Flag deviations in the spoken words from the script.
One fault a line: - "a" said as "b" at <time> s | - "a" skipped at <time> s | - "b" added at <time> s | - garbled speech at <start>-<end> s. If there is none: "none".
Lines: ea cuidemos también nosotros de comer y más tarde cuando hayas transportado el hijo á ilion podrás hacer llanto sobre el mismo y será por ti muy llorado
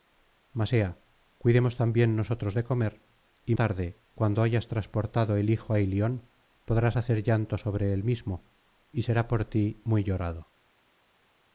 - "más" skipped at 3.5 s